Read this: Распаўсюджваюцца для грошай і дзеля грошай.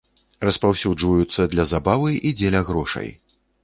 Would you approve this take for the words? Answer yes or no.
no